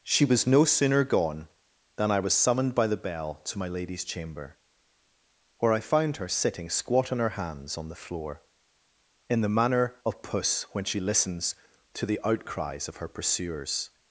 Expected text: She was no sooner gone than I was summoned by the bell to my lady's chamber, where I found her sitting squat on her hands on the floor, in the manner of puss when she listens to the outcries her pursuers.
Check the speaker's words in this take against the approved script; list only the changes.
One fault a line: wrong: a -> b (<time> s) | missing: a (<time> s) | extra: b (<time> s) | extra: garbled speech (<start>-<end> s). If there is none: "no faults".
extra: of (12.9 s)